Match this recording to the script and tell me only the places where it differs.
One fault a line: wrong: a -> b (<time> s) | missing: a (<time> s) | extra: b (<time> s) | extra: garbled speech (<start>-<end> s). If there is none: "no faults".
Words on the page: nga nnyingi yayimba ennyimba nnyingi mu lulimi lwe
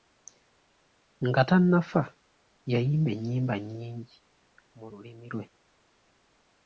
wrong: nnyingi -> tannafa (1.5 s)